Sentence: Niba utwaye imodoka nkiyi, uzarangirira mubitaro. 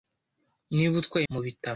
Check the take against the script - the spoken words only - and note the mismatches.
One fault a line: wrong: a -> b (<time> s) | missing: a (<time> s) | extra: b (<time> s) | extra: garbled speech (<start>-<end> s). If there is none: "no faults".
missing: imodoka nkiyi uzarangirira (1.2 s)